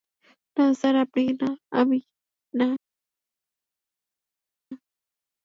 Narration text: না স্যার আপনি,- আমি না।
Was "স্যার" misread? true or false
false